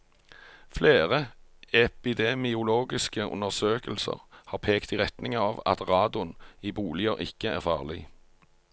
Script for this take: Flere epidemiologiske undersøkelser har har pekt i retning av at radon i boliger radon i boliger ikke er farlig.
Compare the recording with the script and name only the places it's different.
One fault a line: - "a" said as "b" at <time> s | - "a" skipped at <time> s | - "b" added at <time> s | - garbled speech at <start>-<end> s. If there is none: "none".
- "har" skipped at 4.6 s
- "radon i boliger" skipped at 7.2 s